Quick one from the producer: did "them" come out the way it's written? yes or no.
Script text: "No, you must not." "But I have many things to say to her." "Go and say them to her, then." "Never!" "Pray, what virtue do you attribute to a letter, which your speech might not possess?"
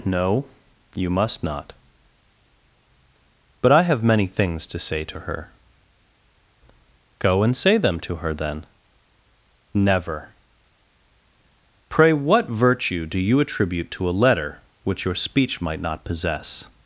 yes